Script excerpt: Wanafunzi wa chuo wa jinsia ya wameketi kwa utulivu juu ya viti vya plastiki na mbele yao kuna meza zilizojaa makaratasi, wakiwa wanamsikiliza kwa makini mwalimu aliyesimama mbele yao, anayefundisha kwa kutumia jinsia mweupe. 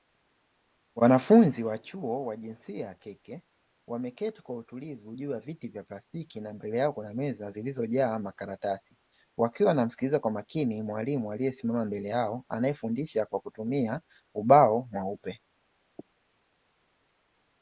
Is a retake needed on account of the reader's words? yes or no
yes